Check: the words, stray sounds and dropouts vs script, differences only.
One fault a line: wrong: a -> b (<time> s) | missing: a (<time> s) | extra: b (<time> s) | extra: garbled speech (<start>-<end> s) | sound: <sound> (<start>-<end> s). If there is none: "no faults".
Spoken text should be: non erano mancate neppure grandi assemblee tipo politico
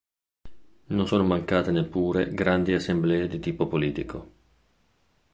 wrong: erano -> sono (1.0 s)
extra: di (3.3 s)